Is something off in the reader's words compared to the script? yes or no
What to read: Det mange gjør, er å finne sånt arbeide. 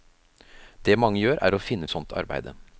no